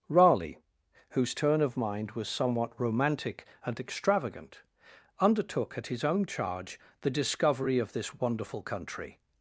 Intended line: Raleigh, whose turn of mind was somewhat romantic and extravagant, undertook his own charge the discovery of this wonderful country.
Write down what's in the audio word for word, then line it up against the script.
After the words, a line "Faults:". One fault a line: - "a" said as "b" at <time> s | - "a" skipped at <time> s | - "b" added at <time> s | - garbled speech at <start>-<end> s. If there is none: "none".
Raleigh, whose turn of mind was somewhat romantic and extravagant, undertook at his own charge the discovery of this wonderful country.
Faults:
- "at" added at 5.8 s